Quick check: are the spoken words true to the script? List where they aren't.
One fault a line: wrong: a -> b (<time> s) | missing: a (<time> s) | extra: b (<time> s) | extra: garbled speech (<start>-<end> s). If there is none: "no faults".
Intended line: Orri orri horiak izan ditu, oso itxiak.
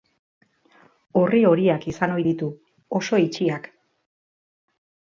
missing: orri (1.4 s)
extra: ohi (2.2 s)